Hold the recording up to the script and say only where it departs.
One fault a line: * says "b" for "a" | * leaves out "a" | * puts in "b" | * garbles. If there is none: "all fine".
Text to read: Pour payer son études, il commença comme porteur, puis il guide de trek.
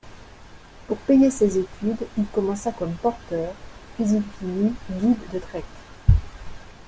* says "ses" for "son"
* puts in "finit"